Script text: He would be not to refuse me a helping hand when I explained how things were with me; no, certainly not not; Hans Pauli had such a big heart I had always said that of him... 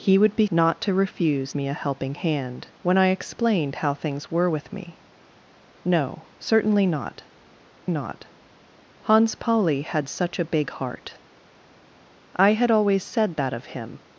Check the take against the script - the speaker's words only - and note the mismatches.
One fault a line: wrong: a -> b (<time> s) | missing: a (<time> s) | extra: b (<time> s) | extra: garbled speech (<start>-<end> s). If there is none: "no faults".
no faults